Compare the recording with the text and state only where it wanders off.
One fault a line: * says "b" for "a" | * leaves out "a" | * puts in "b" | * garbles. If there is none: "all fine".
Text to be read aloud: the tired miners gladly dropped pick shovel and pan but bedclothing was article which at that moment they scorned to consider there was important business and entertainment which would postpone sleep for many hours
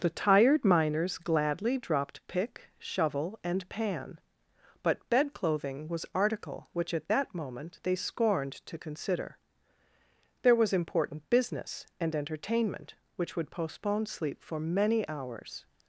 all fine